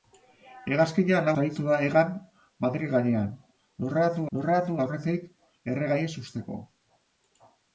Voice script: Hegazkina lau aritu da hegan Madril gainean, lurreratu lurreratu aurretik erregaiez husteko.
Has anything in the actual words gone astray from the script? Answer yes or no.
no